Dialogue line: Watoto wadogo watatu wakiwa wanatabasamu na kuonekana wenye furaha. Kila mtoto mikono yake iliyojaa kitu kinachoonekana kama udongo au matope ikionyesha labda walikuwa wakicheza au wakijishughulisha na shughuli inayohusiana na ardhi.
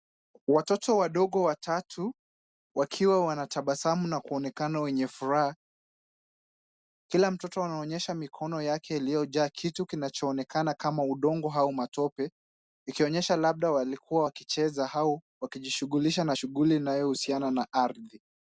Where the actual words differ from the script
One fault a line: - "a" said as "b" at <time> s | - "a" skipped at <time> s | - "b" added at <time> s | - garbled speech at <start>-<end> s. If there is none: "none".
- "anaonyesha" added at 7.6 s